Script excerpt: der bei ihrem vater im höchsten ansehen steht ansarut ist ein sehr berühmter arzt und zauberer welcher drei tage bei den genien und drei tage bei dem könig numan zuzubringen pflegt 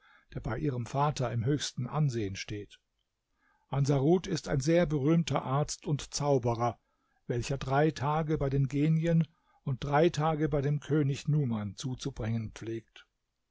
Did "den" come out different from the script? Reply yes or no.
no